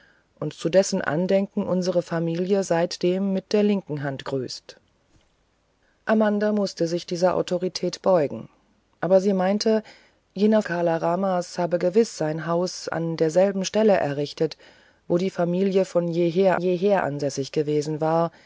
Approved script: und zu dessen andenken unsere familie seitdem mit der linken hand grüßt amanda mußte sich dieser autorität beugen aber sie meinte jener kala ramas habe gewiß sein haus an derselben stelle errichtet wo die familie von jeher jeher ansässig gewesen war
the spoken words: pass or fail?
pass